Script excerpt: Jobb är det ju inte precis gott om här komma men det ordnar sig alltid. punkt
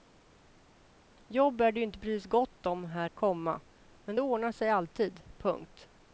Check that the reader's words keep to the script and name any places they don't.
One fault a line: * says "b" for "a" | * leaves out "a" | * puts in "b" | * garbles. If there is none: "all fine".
all fine